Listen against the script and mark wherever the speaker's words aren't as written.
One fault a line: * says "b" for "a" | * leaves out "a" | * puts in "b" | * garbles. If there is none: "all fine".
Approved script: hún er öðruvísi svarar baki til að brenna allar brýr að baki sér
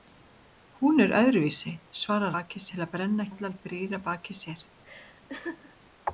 all fine